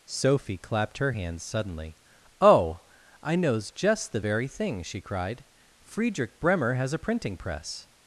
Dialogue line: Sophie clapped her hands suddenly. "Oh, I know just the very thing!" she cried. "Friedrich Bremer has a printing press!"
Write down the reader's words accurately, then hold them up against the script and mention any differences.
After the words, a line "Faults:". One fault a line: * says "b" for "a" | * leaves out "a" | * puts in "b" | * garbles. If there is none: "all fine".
Sophie clapped her hands suddenly. "Oh, I knows just the very thing!" she cried. "Friedrich Bremer has a printing press!"
Faults:
* says "knows" for "know"